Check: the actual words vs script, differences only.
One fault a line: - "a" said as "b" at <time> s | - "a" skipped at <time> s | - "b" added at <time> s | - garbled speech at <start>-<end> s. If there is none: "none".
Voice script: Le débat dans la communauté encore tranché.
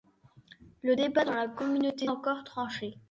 none